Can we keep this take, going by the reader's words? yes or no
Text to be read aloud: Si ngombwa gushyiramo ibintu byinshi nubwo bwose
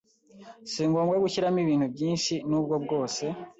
yes